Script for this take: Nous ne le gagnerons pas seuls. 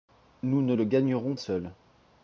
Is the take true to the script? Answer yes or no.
no